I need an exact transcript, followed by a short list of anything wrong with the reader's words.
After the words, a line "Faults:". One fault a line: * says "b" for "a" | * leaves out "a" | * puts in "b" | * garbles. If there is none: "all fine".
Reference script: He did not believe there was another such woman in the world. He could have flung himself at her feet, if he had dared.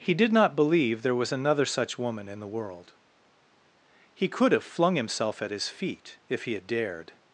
He did not believe there was another such woman in the world. He could have flung himself at his feet, if he had dared.
Faults:
* says "his" for "her"